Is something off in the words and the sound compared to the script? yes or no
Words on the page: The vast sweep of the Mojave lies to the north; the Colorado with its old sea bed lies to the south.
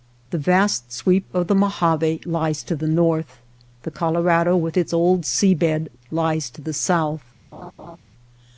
yes